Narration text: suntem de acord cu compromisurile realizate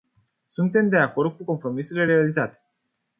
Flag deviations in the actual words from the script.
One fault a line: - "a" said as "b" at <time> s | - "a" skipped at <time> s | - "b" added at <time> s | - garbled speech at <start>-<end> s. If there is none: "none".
none